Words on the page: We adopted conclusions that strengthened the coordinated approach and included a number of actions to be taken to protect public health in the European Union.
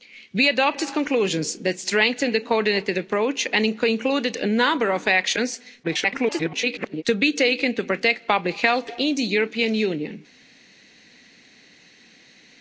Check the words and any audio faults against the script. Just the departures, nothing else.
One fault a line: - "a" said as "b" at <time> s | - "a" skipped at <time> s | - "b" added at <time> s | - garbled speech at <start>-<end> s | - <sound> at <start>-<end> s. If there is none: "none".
- garbled speech at 5.8-7.0 s